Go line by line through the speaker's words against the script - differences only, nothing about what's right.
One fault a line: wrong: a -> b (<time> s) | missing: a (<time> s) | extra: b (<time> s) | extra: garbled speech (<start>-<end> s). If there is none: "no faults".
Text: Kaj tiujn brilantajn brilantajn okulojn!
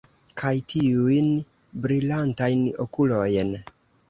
missing: brilantajn (2.6 s)